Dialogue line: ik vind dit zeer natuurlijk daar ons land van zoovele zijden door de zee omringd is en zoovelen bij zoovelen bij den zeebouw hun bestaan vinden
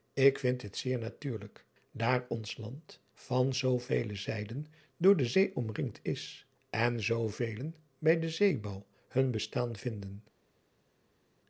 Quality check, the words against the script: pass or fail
fail